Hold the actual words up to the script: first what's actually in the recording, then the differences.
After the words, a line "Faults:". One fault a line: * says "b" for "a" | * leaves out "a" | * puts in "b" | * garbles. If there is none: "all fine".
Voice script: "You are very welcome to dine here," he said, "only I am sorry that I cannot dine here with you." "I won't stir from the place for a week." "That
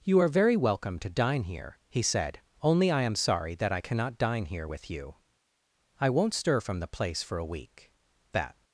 "You are very welcome to dine here," he said, "only I am sorry that I cannot dine here with you." "I won't stir from the place for a week." "That
Faults:
all fine